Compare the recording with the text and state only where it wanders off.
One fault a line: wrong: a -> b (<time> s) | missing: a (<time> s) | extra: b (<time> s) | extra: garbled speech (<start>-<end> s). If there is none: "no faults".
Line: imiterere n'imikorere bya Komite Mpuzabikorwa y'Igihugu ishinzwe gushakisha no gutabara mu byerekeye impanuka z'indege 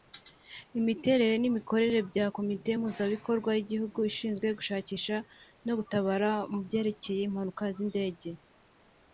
no faults